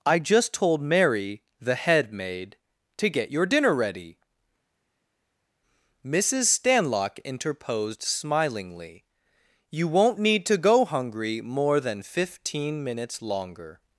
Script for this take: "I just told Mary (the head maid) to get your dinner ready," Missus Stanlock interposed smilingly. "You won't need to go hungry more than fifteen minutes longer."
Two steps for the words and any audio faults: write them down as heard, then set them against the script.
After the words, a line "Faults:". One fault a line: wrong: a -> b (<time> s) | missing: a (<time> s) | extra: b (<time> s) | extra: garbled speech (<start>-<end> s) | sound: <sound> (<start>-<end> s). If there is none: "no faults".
"I just told Mary (the head maid) to get your dinner ready," Missus Stanlock interposed smilingly. "You won't need to go hungry more than fifteen minutes longer."
Faults:
no faults